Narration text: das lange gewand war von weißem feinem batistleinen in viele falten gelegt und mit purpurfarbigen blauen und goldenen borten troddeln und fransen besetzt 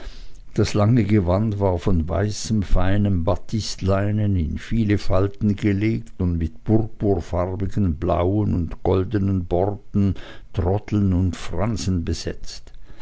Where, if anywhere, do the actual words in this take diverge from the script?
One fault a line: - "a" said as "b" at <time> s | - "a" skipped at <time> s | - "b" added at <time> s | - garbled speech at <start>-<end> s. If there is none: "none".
none